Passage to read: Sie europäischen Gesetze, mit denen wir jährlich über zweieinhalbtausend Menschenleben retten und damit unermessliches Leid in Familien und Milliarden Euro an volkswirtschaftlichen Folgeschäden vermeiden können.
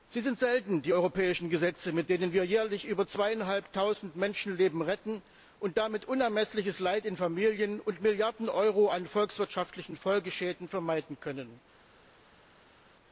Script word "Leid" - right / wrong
right